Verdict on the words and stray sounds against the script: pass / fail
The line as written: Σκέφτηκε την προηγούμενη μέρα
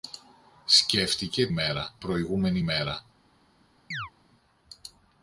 fail